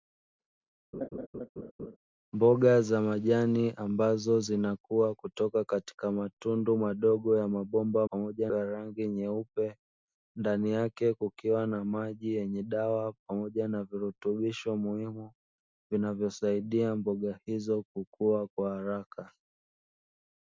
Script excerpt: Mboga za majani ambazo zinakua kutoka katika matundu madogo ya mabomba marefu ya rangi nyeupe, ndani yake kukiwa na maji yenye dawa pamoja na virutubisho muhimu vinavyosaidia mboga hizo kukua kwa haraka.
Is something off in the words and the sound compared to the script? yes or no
yes